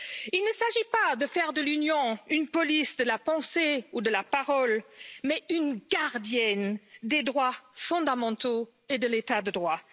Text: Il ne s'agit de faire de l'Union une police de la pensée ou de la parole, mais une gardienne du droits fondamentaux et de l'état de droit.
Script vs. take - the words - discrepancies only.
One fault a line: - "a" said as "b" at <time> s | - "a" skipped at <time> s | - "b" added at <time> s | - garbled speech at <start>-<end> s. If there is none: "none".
- "pas" added at 0.9 s
- "du" said as "des" at 7.0 s